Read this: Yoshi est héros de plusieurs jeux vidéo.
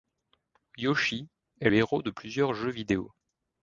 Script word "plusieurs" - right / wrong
right